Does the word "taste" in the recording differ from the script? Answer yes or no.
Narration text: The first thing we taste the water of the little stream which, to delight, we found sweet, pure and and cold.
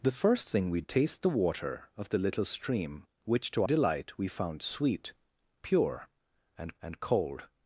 no